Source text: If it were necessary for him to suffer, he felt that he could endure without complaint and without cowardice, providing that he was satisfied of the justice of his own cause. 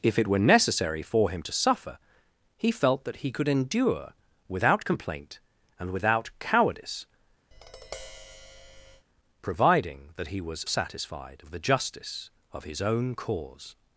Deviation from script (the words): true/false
false